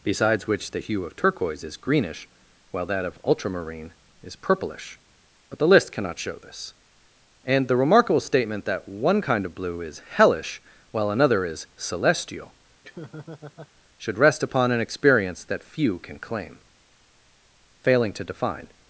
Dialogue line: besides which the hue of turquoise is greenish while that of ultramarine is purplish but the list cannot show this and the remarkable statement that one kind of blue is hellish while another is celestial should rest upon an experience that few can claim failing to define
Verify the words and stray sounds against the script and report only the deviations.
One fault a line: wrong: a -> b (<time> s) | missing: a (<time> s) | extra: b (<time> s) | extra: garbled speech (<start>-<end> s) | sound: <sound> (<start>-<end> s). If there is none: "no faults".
sound: laugh (12.8-13.7 s)